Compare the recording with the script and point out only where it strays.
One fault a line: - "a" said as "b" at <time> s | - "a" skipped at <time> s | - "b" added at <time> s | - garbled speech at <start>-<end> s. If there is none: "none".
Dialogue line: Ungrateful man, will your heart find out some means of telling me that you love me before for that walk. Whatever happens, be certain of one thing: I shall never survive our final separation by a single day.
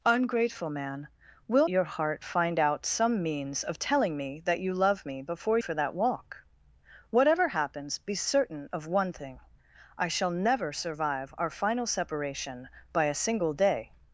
none